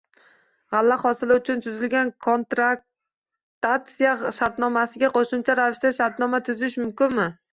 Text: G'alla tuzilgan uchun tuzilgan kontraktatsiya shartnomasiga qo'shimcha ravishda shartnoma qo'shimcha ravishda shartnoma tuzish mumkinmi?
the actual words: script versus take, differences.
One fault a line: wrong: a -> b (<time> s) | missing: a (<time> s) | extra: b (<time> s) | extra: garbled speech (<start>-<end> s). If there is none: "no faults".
wrong: tuzilgan -> hosili (1.0 s)
missing: qo'shimcha ravishda shartnoma (6.4 s)